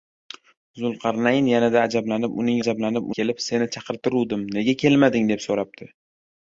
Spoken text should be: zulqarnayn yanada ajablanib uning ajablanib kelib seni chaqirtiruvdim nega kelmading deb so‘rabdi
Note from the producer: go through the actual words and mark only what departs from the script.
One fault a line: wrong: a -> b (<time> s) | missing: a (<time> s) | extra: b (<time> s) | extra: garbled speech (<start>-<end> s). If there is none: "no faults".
no faults